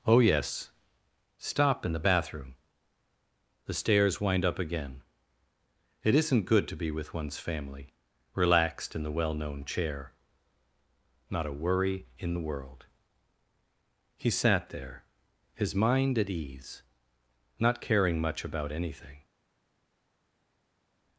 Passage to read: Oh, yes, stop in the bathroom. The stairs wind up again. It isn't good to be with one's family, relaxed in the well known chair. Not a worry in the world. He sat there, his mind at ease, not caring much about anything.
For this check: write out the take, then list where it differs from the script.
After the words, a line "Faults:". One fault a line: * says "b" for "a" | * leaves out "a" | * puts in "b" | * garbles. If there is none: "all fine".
Oh, yes, stop in the bathroom. The stairs wind up again. It isn't good to be with one's family, relaxed in the well known chair. Not a worry in the world. He sat there, his mind at ease, not caring much about anything.
Faults:
all fine